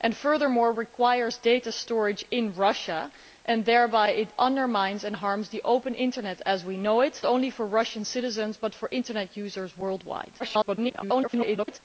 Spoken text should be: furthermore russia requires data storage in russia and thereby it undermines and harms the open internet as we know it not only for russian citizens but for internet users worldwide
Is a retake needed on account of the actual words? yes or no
yes